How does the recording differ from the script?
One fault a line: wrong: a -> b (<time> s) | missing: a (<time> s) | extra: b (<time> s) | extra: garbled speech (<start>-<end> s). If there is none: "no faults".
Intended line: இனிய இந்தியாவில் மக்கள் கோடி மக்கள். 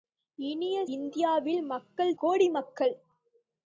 no faults